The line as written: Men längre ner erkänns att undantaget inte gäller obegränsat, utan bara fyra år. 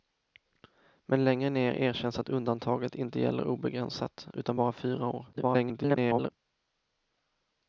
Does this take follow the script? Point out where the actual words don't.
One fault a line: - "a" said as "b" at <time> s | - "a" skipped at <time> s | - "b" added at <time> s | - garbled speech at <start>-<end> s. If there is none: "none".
- garbled speech at 5.3-6.3 s